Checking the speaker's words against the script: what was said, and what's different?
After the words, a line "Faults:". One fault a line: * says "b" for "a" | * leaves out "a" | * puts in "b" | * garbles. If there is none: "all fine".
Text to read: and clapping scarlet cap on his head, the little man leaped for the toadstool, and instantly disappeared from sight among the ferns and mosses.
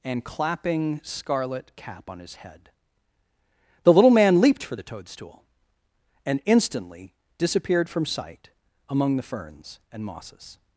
and clapping scarlet cap on his head, the little man leaped for the toadstool, and instantly disappeared from sight among the ferns and mosses.
Faults:
all fine